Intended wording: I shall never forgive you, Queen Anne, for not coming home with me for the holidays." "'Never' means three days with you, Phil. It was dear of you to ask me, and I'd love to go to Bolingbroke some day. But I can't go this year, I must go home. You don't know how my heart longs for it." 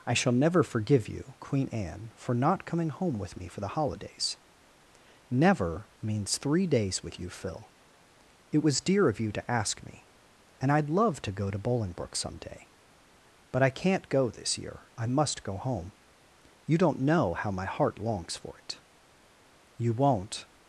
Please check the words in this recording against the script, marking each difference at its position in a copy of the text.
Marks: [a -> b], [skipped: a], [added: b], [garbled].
I shall never forgive you, Queen Anne, for not coming home with me for the holidays." "'Never' means three days with you, Phil. It was dear of you to ask me, and I'd love to go to Bolingbroke some day. But I can't go this year, I must go home. You don't know how my heart longs for it." [added: You won't]